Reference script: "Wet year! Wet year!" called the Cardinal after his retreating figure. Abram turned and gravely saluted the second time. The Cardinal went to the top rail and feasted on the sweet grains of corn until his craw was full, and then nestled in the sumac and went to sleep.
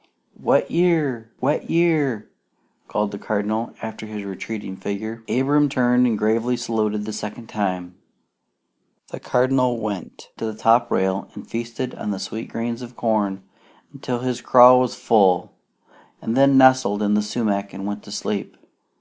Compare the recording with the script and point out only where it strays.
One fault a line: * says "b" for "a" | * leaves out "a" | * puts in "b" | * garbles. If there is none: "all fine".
all fine